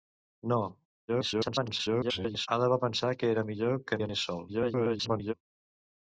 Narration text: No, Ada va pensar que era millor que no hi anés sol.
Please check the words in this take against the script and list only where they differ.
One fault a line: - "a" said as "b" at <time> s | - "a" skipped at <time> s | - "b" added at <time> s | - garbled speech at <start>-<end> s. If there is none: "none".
- garbled speech at 1.1-2.5 s
- "no" skipped at 4.0 s
- garbled speech at 4.5-5.3 s